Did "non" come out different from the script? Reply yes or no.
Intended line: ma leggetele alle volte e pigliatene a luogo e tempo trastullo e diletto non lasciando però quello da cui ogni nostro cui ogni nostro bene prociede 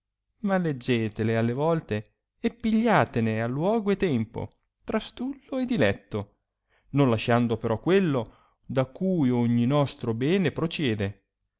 no